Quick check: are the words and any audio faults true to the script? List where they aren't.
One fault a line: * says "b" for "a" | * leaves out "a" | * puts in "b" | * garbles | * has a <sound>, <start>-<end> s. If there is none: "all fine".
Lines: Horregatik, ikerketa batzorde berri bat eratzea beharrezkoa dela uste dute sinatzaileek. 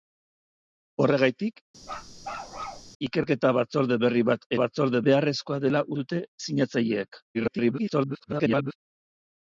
* has a bark, 1.8-2.9 s
* says "batzorde" for "eratzea"
* leaves out "uste"
* garbles